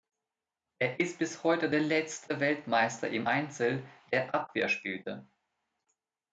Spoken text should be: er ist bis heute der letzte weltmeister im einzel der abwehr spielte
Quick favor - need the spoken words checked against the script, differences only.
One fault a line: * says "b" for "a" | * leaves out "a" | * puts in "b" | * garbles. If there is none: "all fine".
all fine